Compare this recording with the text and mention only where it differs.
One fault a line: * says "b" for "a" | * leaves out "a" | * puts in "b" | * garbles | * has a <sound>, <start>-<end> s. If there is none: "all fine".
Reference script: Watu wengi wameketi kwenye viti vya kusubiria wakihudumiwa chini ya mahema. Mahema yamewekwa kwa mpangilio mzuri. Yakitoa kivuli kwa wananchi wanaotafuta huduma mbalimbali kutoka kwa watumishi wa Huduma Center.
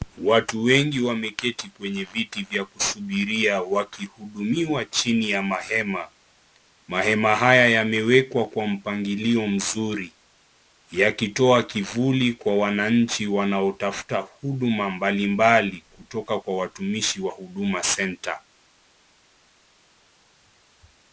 * puts in "haya"